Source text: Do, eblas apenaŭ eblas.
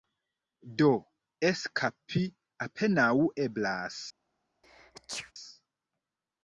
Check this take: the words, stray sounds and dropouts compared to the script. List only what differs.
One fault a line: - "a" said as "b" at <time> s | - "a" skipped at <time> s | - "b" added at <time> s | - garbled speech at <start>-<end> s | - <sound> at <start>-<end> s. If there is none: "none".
- "eblas" said as "eskapi" at 1.5 s
- sneeze at 4.6-5.3 s